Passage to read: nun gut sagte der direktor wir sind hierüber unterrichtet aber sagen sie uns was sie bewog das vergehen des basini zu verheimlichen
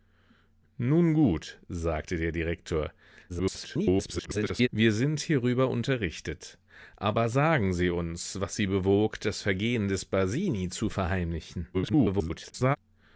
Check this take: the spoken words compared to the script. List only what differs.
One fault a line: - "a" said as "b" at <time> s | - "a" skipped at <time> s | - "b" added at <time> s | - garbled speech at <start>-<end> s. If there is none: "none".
- garbled speech at 3.3-4.7 s
- garbled speech at 11.7-12.8 s